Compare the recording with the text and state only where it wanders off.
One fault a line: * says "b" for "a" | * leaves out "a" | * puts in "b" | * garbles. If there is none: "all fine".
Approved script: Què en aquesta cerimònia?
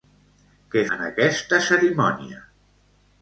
all fine